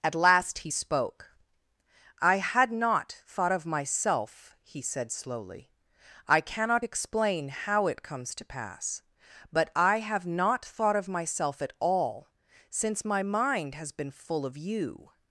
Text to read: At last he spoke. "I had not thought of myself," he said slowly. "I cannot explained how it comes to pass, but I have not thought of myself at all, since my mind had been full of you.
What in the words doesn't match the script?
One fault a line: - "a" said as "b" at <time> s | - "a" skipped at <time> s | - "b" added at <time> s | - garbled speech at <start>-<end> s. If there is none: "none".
- "explained" said as "explain" at 6.8 s
- "had" said as "has" at 13.7 s